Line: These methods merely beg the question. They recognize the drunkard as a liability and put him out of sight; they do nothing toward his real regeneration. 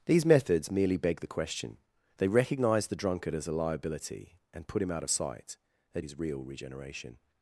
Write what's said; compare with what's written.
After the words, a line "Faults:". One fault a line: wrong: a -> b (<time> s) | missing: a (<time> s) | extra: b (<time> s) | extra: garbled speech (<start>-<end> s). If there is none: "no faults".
These methods merely beg the question. They recognize the drunkard as a liability and put him out of sight; they his real regeneration.
Faults:
missing: do nothing toward (6.0 s)